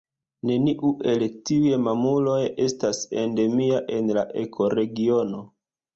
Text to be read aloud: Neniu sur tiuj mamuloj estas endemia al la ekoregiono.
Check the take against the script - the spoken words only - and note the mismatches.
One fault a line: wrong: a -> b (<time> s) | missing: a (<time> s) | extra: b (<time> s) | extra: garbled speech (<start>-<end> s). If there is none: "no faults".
wrong: sur -> el (1.1 s)
wrong: al -> en (4.0 s)